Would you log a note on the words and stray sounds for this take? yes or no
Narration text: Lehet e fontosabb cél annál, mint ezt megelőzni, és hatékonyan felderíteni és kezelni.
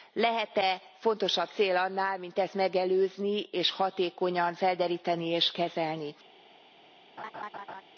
yes